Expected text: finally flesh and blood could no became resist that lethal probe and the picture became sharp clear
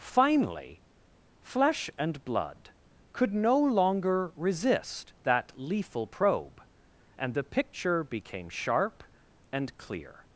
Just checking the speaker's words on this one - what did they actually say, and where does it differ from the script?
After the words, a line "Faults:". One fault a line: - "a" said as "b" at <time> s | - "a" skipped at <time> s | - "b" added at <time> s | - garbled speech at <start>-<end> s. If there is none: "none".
finally flesh and blood could no longer resist that lethal probe and the picture became sharp and clear
Faults:
- "became" said as "longer" at 3.6 s
- "and" added at 9.5 s